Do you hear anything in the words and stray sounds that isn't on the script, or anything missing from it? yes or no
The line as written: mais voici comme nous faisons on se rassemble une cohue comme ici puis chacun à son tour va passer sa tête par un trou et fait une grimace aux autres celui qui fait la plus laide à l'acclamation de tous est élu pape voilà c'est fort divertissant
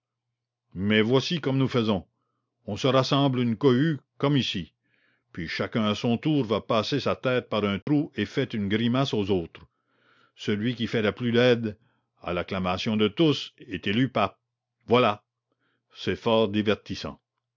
yes